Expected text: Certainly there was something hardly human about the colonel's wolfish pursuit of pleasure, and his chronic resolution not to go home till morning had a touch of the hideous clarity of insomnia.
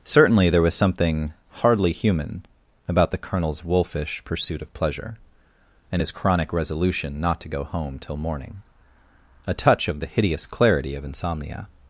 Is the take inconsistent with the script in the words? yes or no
yes